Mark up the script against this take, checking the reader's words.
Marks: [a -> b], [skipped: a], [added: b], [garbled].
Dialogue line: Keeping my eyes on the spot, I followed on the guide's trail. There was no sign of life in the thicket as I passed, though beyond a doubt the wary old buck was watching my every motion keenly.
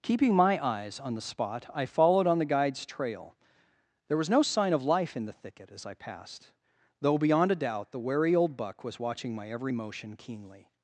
Keeping my eyes on the spot, I followed on the guide's trail. There was no sign of life in the thicket as I passed, though beyond a doubt the wary old buck was watching my every motion keenly.